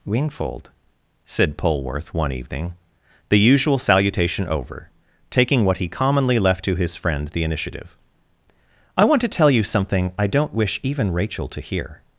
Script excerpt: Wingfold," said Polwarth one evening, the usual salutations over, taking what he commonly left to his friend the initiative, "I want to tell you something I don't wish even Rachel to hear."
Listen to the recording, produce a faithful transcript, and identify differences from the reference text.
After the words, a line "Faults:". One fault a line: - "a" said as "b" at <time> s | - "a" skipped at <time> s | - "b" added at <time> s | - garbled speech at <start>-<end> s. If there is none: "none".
Wingfold," said Polwarth one evening, the usual salutation over, taking what he commonly left to his friend the initiative, "I want to tell you something I don't wish even Rachel to hear."
Faults:
- "salutations" said as "salutation" at 3.8 s